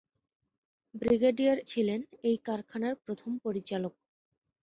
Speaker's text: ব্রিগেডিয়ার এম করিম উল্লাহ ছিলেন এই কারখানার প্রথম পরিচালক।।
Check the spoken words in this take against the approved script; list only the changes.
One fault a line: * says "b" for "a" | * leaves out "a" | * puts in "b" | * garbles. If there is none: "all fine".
* leaves out "এম করিম উল্লাহ"